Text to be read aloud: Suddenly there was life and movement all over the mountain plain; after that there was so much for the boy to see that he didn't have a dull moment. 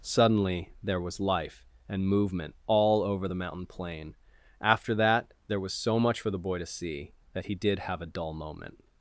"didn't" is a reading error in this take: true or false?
true